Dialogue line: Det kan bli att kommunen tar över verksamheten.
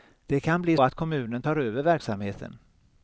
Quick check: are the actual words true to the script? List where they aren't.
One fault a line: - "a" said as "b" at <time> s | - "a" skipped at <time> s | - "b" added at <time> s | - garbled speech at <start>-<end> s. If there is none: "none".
none